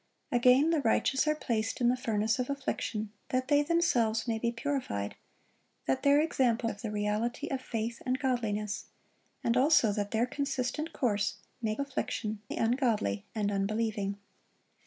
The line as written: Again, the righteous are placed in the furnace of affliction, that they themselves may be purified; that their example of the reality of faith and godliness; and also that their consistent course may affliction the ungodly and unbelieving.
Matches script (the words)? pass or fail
pass